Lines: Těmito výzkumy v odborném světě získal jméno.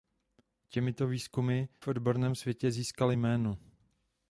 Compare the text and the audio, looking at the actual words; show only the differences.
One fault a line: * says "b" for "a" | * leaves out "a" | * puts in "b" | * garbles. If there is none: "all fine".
all fine